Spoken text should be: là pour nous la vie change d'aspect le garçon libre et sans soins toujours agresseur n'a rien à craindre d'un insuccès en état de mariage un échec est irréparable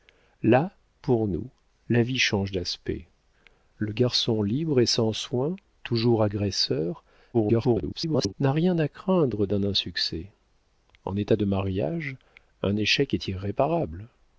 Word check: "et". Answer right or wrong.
right